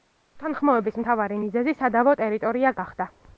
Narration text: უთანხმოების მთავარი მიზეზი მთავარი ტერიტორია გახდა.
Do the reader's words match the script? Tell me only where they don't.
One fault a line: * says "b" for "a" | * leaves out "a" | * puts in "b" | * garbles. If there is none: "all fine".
* says "სადავო" for "მთავარი"